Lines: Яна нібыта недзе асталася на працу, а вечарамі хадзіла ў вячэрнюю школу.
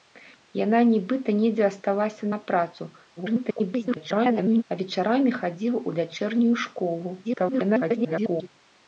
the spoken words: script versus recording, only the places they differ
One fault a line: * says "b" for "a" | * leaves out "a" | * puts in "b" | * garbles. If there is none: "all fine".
* garbles
* garbles